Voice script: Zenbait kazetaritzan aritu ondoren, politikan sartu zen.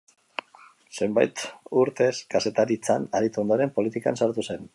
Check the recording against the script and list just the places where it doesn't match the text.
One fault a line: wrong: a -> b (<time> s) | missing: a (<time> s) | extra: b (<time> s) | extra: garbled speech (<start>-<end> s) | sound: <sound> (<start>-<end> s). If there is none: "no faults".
extra: urtez (1.8 s)